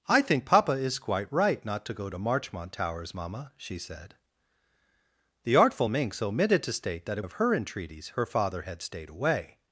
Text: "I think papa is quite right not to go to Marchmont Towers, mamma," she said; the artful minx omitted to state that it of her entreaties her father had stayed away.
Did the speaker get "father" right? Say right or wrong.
right